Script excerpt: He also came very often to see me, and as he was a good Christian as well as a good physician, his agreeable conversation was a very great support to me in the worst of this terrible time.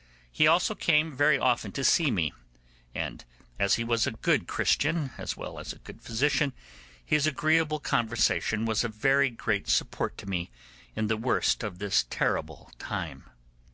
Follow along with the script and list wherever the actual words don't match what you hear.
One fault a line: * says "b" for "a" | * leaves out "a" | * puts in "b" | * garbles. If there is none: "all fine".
all fine